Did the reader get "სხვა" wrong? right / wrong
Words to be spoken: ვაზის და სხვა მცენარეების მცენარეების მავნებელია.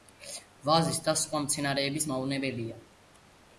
right